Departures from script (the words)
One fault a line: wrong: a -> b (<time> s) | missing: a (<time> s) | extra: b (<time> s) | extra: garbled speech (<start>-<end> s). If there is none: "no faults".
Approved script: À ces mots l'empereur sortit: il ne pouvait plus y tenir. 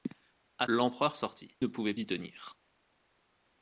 missing: ces mots (0.7 s)
missing: il (1.6 s)
missing: plus (1.9 s)